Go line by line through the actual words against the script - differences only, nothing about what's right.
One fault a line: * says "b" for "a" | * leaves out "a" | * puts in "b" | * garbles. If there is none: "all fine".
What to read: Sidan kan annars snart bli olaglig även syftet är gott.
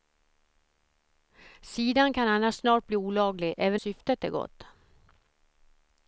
all fine